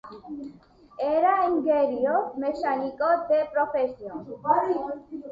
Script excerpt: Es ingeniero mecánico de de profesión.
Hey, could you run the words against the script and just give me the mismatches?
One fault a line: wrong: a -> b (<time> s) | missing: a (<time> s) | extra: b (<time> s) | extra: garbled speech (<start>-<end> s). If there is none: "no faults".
wrong: Es -> Era (1.0 s)
missing: de (3.4 s)